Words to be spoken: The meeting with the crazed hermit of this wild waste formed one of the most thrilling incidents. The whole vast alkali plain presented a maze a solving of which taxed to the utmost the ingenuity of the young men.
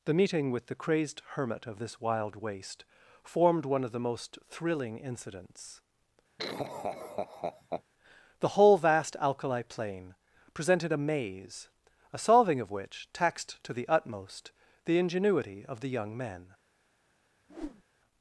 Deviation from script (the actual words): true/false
false